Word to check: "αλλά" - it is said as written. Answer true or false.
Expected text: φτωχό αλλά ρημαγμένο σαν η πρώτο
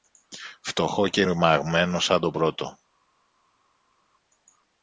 false